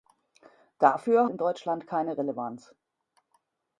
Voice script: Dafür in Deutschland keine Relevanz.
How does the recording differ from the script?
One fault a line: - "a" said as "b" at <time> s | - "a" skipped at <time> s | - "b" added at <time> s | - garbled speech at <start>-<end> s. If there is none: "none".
none